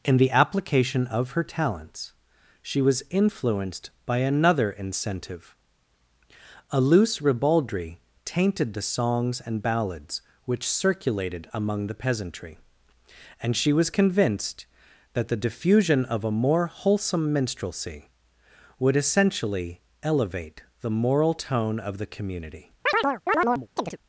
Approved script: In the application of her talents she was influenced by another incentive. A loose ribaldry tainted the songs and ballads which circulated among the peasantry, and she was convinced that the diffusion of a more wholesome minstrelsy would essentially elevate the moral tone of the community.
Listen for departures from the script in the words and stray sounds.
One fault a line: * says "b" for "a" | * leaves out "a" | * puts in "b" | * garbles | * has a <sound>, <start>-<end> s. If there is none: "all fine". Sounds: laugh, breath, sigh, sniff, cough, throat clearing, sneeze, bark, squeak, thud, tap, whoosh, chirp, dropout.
* has a chirp, 22.9-24.0 s